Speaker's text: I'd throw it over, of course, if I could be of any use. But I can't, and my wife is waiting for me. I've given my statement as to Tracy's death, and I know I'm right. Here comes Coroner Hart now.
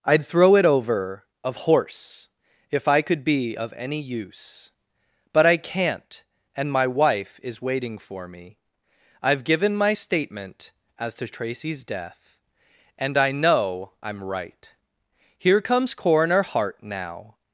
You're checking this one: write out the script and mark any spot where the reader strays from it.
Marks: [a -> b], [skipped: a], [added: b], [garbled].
I'd throw it over, of [course, -> horse] if I could be of any use. But I can't, and my wife is waiting for me. I've given my statement as to Tracy's death, and I know I'm right. Here comes Coroner Hart now.